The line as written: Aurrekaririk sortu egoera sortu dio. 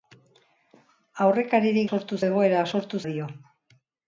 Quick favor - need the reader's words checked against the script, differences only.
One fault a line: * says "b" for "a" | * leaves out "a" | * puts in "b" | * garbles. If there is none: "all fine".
all fine